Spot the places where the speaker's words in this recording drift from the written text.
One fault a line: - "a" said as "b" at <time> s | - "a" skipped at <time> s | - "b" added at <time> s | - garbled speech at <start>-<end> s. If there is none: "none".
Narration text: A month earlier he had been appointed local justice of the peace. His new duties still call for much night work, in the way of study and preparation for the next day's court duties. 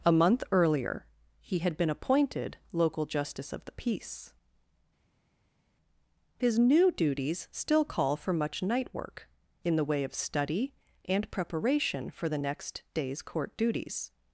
none